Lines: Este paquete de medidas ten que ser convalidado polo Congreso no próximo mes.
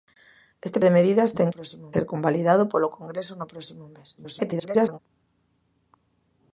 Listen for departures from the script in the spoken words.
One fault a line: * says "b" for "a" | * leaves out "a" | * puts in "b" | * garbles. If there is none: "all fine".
* leaves out "paquete"
* says "próximo" for "que"
* garbles